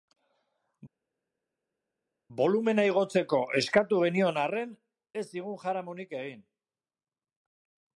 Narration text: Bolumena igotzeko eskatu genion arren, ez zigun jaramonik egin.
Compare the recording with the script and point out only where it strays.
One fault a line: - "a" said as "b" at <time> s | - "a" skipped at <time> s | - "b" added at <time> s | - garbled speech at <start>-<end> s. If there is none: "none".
none